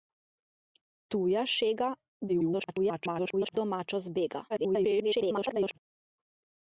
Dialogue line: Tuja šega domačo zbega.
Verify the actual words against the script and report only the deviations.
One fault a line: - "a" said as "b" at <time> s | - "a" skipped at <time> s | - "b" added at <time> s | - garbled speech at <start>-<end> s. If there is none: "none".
- garbled speech at 2.3-3.6 s
- garbled speech at 4.5-5.8 s